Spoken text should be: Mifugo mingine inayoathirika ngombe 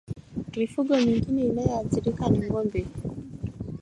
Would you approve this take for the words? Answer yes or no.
no